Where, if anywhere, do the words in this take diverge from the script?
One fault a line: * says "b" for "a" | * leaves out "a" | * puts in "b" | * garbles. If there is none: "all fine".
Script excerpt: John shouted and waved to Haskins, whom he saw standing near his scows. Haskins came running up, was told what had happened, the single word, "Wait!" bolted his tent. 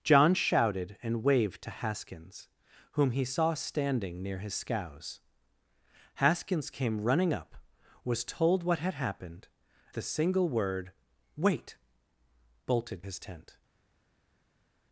all fine